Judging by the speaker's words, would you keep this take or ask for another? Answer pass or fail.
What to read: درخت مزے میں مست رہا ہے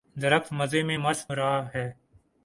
pass